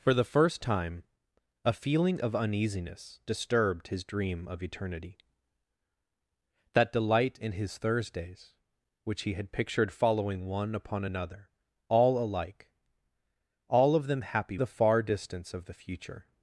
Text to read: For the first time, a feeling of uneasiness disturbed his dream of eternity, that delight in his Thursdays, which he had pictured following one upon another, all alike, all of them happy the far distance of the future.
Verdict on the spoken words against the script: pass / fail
pass